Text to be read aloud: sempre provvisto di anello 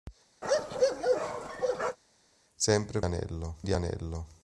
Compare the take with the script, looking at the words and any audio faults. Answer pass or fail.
fail